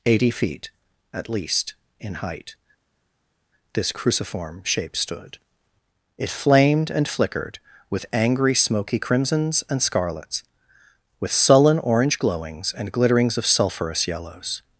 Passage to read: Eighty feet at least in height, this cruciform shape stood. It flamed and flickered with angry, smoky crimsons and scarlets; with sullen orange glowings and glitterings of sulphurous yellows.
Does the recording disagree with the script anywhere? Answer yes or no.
no